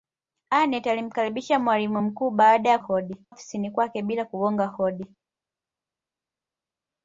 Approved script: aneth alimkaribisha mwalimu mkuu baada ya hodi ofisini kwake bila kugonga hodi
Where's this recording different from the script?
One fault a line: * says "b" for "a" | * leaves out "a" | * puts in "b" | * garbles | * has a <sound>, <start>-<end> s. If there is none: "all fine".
all fine